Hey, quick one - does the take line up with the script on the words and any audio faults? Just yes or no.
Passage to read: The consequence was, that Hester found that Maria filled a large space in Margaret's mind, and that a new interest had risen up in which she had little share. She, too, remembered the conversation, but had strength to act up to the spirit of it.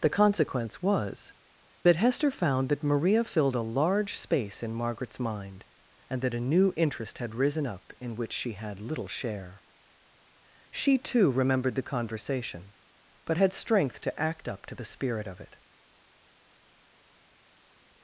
yes